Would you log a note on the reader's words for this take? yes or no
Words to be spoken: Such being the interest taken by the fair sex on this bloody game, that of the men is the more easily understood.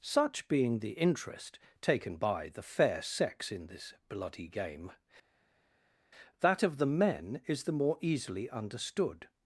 yes